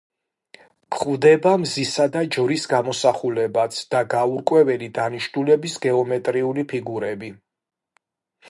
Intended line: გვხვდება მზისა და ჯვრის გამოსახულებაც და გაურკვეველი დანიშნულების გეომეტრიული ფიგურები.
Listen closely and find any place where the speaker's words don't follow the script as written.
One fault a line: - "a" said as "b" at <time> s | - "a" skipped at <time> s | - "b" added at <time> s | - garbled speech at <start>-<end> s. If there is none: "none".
none